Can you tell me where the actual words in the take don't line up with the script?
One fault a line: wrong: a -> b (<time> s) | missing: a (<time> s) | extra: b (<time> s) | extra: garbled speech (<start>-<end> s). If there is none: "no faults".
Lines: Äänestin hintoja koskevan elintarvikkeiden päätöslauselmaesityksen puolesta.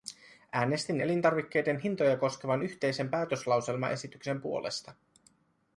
extra: elintarvikkeiden (1.0 s)
wrong: elintarvikkeiden -> yhteisen (2.6 s)